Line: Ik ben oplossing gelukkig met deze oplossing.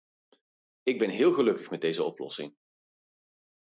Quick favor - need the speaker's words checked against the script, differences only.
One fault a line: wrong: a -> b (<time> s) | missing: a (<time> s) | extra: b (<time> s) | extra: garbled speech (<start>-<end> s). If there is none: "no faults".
wrong: oplossing -> heel (1.1 s)